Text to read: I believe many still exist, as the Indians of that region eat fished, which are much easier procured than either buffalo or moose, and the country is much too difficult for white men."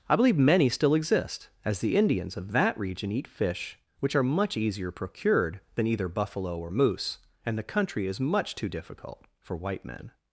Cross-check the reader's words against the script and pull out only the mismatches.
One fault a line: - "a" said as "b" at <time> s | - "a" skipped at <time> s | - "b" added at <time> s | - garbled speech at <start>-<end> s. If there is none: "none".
- "fished" said as "fish" at 3.3 s